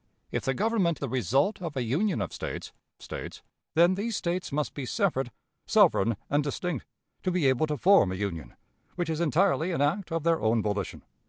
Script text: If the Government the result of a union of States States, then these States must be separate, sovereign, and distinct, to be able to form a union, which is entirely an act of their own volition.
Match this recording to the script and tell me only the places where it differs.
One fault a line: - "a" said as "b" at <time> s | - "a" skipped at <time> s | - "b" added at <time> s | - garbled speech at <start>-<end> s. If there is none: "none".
none